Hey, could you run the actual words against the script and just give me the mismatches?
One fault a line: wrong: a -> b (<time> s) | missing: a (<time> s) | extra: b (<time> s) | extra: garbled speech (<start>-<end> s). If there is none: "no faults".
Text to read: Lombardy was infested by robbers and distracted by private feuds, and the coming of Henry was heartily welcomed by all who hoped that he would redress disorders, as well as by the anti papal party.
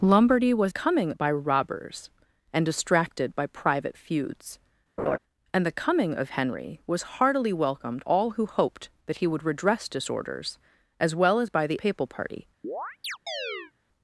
wrong: infested -> coming (0.7 s)
missing: by (8.0 s)
missing: anti (11.8 s)